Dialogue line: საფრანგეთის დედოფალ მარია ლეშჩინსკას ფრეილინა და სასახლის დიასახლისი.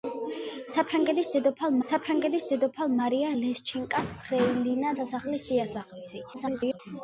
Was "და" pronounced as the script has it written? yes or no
no